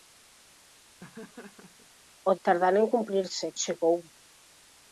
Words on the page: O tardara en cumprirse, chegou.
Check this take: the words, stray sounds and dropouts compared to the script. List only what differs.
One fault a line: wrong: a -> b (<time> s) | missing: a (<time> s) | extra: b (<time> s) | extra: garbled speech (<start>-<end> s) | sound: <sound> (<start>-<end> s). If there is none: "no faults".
sound: laugh (1.0-1.9 s)